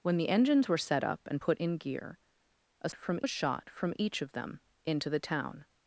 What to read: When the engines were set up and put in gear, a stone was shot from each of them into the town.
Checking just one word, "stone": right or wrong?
wrong